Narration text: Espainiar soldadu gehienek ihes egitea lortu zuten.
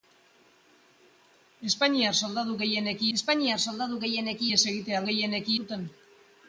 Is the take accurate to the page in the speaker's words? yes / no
no